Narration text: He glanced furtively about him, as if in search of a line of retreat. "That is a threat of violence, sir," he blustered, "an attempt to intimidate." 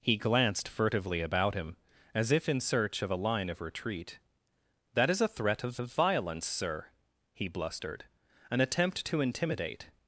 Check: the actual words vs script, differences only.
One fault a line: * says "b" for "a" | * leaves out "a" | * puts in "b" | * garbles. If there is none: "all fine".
* puts in "of"